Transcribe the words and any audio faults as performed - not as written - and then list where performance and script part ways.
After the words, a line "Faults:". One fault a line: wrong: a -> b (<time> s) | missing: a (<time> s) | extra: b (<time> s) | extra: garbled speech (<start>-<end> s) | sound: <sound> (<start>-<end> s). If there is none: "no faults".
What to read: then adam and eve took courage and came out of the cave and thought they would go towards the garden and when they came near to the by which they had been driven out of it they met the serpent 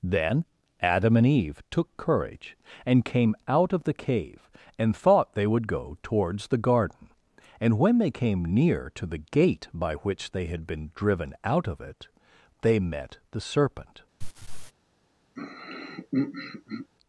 then adam and eve took courage and came out of the cave and thought they would go towards the garden and when they came near to the gate by which they had been driven out of it they met the serpent
Faults:
extra: gate (9.2 s)
sound: laugh (14.2-14.7 s)
sound: throat clearing (15.4-16.9 s)